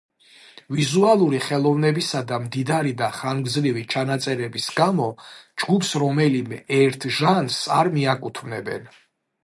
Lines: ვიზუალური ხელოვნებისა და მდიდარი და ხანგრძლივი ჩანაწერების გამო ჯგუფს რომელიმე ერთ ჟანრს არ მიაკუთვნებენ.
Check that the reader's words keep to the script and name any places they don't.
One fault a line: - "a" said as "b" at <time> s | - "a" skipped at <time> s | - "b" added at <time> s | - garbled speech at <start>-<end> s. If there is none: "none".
none